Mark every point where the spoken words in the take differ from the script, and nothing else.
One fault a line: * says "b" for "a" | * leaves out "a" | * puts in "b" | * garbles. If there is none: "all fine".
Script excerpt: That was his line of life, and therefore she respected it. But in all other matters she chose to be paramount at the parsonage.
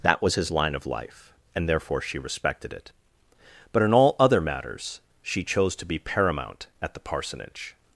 all fine